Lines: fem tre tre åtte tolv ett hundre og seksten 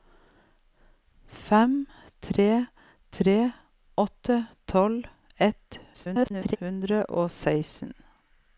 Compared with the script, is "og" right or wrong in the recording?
right